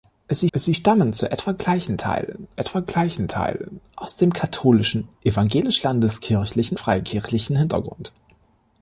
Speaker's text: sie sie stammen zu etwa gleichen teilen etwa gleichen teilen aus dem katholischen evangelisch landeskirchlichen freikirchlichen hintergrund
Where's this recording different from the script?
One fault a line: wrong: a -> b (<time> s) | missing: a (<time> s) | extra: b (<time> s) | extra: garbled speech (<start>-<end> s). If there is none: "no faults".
no faults